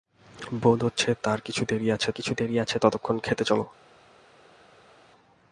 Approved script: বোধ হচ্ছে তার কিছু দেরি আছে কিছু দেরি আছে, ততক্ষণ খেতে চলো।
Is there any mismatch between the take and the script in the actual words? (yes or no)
no